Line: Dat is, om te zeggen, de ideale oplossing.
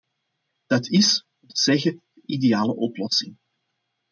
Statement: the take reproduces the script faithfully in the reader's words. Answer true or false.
true